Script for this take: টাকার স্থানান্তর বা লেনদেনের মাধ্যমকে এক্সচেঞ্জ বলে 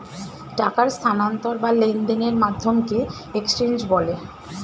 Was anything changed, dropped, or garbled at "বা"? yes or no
no